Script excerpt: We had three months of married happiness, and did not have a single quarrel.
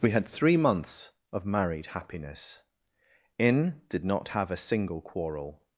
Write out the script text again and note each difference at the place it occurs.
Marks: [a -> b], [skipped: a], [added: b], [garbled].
We had three months of married happiness, [and -> in] did not have a single quarrel.